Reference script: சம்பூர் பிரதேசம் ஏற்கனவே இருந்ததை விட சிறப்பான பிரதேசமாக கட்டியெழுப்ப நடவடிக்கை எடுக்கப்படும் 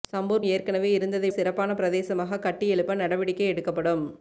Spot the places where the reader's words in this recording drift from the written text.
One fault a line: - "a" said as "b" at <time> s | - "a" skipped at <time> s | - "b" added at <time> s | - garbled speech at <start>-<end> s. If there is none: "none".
- "பிரதேசம்" skipped at 0.4 s
- "விட" skipped at 1.3 s